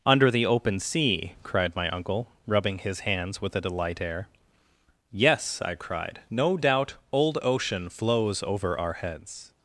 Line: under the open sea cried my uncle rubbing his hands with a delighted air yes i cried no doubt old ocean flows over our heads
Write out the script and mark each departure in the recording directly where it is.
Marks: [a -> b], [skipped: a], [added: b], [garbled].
under the open sea cried my uncle rubbing his hands with a [delighted -> delight] air yes i cried no doubt old ocean flows over our heads